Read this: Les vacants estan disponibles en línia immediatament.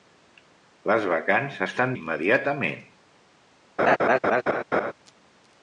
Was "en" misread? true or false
true